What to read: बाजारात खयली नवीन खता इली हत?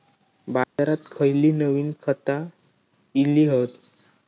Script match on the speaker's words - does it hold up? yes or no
yes